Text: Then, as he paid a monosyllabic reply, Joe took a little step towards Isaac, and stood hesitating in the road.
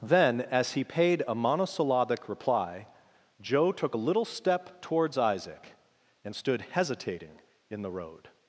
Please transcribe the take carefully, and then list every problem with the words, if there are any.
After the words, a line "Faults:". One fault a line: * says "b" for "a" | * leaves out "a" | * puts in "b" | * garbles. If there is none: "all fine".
Then, as he paid a monosyllabic reply, Joe took a little step towards Isaac, and stood hesitating in the road.
Faults:
all fine